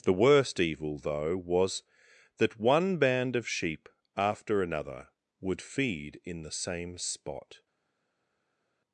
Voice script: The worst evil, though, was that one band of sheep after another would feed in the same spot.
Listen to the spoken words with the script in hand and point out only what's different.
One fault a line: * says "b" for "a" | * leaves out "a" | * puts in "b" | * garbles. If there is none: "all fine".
all fine